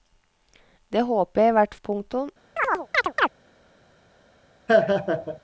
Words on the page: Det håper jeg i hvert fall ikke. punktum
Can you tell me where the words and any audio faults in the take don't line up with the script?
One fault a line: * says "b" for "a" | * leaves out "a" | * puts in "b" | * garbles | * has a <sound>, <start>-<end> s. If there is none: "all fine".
* leaves out "fall ikke"
* has a chirp, 2.6-3.3 s
* has a laugh, 4.7-5.4 s